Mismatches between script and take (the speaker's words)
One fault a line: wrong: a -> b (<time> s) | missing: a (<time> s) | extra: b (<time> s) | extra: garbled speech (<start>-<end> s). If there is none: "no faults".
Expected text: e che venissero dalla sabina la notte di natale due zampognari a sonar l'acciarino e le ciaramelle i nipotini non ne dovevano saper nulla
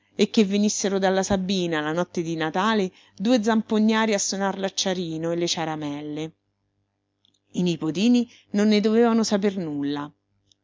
no faults